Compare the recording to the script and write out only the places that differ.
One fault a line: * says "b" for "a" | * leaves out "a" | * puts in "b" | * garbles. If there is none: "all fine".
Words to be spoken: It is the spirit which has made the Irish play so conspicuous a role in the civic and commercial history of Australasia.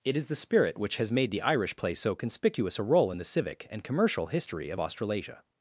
all fine